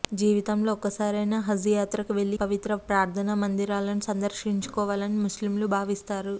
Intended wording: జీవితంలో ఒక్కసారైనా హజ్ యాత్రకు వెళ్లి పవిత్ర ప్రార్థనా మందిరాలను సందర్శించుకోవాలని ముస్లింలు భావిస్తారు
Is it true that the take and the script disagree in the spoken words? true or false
false